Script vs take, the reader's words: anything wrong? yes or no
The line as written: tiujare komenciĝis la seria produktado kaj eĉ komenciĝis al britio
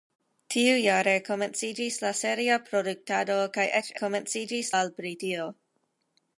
no